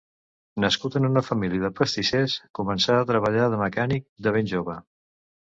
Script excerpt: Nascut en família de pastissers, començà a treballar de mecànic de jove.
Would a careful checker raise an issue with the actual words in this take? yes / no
yes